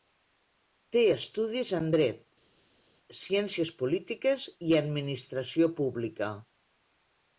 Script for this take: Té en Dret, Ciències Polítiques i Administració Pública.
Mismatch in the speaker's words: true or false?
true